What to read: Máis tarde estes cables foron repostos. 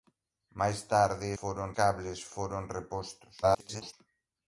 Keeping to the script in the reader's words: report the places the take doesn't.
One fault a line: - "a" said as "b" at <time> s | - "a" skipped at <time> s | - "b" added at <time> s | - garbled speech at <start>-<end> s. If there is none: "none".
- "estes" said as "foron" at 1.4 s
- garbled speech at 3.4-3.9 s